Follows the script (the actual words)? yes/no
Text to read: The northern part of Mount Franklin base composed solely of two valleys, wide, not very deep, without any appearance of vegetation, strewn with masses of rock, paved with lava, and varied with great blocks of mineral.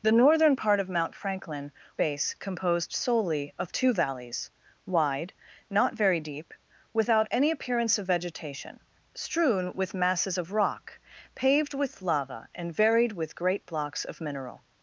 yes